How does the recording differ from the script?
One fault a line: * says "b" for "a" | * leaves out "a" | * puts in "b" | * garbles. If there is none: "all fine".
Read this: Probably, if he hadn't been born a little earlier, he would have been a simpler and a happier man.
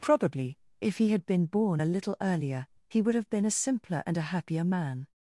* says "had" for "hadn't"